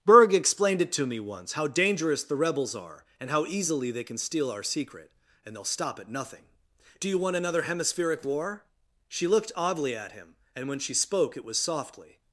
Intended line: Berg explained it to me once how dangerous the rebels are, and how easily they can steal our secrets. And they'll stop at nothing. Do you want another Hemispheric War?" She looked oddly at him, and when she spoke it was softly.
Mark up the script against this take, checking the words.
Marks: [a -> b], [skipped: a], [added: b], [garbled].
Berg explained it to me once how dangerous the rebels are, and how easily they can steal our [secrets. -> secret] And they'll stop at nothing. Do you want another Hemispheric War?" She looked oddly at him, and when she spoke it was softly.